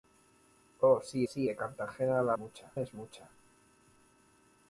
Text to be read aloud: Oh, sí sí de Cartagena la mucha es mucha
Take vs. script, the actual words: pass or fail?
pass